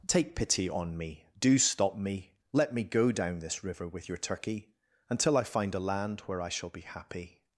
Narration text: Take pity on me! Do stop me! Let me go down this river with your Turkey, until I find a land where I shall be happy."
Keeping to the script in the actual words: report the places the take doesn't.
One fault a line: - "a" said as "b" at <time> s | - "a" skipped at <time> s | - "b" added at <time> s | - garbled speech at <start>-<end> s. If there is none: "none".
none